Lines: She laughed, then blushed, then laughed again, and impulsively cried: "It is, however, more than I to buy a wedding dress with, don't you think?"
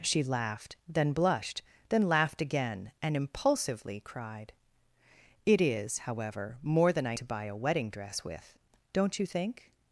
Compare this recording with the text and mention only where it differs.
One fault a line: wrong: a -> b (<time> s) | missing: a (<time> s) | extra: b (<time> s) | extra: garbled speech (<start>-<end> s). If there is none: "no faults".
no faults